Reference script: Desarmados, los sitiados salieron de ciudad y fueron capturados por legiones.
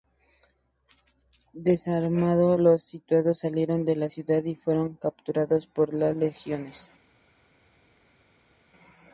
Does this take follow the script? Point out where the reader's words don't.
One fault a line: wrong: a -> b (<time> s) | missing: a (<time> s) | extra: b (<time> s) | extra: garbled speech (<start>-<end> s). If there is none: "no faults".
extra: la (4.0 s)
extra: las (5.9 s)